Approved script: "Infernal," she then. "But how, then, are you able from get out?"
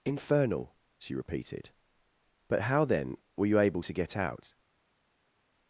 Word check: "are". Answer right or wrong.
wrong